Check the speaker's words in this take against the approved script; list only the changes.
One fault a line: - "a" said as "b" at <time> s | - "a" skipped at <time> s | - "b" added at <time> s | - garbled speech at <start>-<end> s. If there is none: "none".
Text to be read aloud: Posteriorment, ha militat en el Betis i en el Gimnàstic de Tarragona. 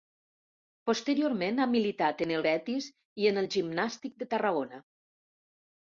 none